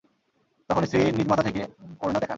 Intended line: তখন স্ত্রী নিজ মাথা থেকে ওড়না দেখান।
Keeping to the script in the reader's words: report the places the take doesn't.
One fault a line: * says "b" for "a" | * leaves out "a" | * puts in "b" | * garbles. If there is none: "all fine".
all fine